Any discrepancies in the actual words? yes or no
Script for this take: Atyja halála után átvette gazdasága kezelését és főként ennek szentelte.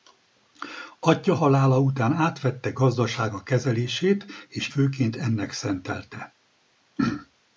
no